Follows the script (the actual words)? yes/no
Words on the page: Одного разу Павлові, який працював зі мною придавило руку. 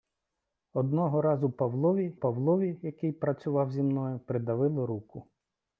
no